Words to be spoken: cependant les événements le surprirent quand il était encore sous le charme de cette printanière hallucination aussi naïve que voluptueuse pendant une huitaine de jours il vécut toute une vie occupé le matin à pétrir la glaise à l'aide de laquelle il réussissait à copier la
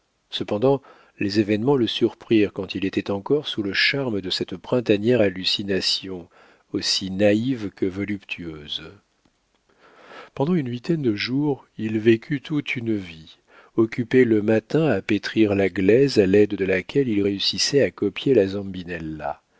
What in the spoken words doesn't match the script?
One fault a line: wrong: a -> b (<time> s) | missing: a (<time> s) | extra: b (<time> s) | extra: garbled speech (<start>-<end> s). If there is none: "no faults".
no faults